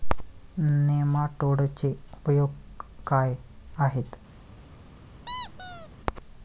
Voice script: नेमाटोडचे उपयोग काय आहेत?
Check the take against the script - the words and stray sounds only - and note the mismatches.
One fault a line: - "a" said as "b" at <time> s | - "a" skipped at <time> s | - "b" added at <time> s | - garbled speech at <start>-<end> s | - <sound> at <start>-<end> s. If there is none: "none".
- squeak at 5.3-5.9 s